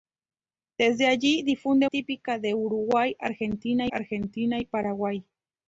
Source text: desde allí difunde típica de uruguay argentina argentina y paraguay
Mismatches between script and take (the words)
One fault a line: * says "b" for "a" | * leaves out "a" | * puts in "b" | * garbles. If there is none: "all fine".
all fine